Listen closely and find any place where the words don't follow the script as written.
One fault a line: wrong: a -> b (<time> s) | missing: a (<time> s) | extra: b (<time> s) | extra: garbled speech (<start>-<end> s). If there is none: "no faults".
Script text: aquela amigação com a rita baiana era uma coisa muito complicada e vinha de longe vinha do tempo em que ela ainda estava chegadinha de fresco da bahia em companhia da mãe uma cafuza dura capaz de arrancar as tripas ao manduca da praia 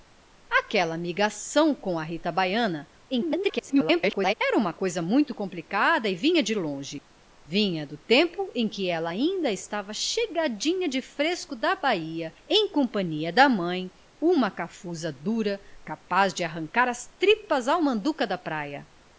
extra: garbled speech (3.1-4.3 s)